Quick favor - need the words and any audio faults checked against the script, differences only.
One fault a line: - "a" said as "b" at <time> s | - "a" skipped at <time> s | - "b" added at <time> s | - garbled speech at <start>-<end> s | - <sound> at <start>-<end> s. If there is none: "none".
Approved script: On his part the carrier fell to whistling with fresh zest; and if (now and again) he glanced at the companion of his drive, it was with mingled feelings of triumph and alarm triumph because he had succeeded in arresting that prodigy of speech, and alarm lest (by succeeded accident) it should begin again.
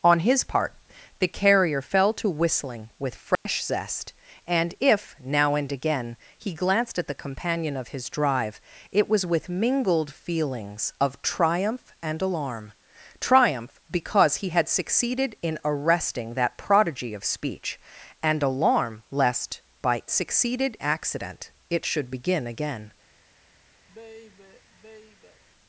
- dropout at 3.3-3.5 s
- sigh at 23.9-25.4 s